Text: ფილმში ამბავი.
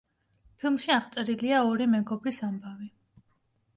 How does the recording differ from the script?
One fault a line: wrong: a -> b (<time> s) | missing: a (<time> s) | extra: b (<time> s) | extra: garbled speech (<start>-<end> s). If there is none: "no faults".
extra: აღწერილია ორი მეგობრის (0.9 s)